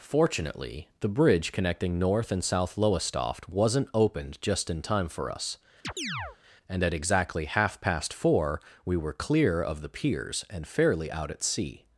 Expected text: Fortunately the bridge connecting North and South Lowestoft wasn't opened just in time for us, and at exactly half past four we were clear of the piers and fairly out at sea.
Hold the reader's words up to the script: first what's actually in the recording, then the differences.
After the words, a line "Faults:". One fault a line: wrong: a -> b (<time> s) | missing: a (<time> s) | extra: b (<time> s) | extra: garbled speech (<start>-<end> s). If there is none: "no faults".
Fortunately the bridge connecting North and South Lowestoft wasn't opened just in time for us, and at exactly half past four we were clear of the piers and fairly out at sea.
Faults:
no faults